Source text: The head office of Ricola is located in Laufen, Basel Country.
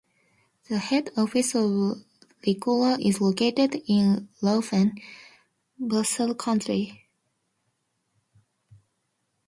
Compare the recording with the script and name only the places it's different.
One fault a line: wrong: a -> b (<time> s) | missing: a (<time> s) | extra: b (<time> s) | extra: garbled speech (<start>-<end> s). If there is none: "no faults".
no faults